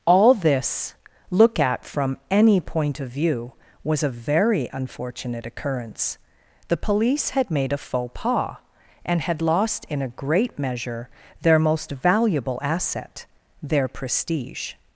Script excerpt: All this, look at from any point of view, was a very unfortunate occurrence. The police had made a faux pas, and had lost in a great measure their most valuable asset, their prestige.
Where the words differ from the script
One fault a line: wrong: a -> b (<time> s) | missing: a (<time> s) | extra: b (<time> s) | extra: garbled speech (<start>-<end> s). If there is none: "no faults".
no faults